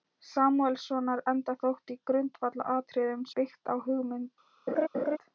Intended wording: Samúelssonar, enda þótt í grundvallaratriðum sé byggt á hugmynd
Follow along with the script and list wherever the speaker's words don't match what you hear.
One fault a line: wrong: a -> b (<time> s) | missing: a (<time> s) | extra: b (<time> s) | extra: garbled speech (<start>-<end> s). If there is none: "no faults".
missing: sé (3.3 s)